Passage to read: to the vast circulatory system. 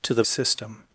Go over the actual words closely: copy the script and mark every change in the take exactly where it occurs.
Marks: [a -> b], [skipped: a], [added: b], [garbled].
to the [skipped: vast circulatory] system.